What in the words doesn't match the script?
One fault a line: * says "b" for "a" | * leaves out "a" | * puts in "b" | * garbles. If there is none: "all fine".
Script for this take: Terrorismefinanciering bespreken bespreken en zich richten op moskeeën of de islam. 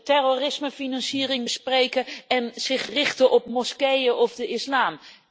* leaves out "bespreken"